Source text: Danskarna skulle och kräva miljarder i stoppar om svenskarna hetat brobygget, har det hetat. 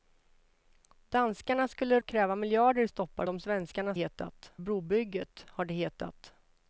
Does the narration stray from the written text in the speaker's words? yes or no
no